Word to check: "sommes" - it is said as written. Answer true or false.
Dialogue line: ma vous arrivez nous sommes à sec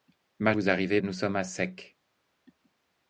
true